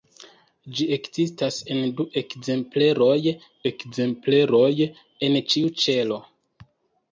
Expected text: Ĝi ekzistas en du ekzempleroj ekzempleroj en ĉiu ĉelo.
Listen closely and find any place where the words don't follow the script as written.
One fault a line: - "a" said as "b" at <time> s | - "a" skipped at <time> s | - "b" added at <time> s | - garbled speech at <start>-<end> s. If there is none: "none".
none